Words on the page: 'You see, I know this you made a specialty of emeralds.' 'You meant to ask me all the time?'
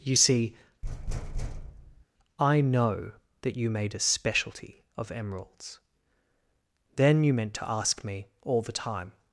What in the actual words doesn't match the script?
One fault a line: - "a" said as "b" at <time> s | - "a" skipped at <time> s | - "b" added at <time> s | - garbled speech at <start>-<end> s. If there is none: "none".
- "this" said as "that" at 3.4 s
- "Then" added at 6.9 s